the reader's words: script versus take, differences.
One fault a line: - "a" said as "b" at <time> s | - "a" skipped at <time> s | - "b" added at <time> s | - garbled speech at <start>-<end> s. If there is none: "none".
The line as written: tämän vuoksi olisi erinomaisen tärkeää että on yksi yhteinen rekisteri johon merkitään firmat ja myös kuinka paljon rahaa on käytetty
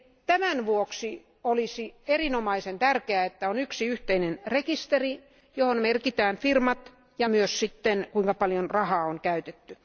none